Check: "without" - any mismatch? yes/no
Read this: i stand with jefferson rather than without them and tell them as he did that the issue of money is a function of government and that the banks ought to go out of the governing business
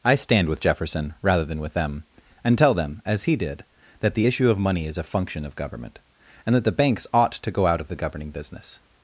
yes